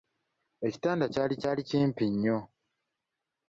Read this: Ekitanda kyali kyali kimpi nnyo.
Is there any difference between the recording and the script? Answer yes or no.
no